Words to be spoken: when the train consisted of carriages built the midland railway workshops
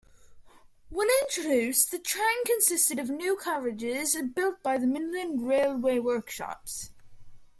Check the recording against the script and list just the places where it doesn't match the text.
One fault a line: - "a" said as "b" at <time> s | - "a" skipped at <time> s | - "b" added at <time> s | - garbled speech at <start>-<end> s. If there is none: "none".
- "introduced" added at 1.2 s
- "new" added at 3.1 s
- "by" added at 4.6 s